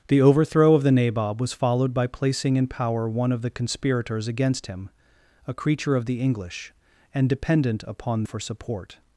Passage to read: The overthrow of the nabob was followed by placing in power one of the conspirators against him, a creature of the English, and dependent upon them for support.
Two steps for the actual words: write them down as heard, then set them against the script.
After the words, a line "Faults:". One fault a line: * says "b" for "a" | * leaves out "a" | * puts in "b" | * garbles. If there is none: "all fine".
The overthrow of the nabob was followed by placing in power one of the conspirators against him, a creature of the English, and dependent upon for support.
Faults:
* leaves out "them"